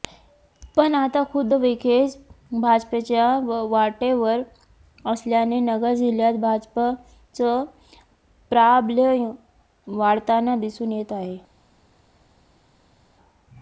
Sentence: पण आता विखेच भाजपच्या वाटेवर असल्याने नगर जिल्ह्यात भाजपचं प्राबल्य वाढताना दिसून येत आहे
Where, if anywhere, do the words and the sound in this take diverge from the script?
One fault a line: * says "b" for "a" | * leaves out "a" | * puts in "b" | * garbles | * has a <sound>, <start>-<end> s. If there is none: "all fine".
* puts in "खुद्द"